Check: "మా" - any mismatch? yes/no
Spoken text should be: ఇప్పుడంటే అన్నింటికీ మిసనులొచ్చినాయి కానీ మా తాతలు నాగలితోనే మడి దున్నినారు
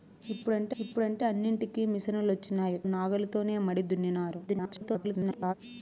yes